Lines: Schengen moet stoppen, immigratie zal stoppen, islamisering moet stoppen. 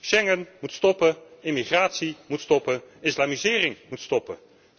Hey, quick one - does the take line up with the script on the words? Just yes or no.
no